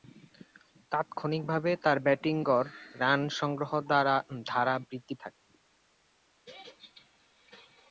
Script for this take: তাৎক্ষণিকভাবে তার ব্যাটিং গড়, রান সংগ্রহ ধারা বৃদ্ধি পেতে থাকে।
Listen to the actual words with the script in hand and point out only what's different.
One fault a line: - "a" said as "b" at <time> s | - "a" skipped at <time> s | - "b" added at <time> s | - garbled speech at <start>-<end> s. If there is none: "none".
- "পেতে" skipped at 5.1 s